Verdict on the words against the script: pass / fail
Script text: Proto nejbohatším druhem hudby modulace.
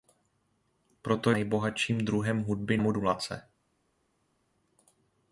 pass